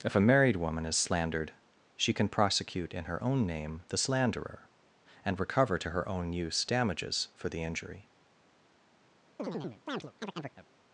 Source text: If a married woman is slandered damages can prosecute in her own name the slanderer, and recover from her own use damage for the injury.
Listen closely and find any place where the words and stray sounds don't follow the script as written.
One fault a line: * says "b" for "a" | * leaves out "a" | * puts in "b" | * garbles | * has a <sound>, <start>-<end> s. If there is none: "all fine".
* says "she" for "damages"
* says "to" for "from"
* says "damages" for "damage"
* has a chirp, 9.4-10.7 s